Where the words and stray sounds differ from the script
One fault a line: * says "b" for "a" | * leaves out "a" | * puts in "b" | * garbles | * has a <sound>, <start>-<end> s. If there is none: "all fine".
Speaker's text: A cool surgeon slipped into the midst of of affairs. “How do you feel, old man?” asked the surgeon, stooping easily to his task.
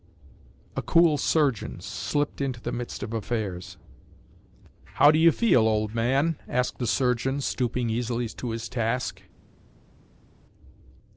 * leaves out "of"